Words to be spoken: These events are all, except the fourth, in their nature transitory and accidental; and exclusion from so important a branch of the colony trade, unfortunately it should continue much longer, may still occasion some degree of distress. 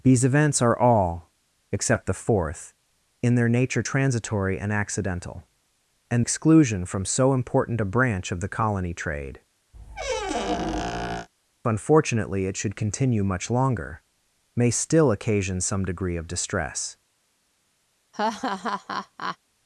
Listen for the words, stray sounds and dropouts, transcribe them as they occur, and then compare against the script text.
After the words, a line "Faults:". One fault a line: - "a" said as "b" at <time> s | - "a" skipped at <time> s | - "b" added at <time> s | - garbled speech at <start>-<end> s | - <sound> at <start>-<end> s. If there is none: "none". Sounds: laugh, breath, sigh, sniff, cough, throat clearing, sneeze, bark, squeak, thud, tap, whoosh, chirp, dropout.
These events are all, except the fourth, in their nature transitory and accidental; and exclusion from so important a branch of the colony trade, unfortunately it should continue much longer, may still occasion some degree of distress.
Faults:
- squeak at 9.7-11.3 s
- laugh at 18.1-19.4 s